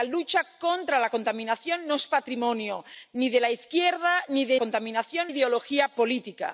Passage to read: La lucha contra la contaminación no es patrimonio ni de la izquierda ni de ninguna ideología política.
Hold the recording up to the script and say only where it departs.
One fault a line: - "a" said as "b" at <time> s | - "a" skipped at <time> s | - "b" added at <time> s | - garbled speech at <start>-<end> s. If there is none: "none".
- "ninguna" said as "contaminación" at 4.6 s